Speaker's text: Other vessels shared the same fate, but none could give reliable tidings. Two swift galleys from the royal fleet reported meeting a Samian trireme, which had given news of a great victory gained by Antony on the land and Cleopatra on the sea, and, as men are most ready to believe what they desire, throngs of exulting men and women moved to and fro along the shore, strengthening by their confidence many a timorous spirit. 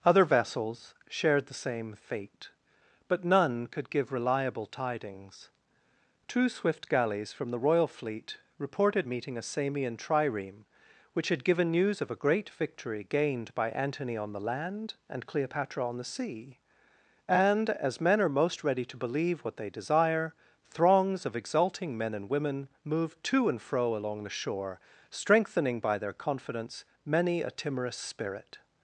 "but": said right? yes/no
yes